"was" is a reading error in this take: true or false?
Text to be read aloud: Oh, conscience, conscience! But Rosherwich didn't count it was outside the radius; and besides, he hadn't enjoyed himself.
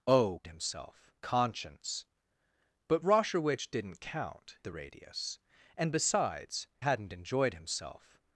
true